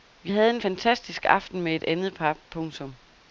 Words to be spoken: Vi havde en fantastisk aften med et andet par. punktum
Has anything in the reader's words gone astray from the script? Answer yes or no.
no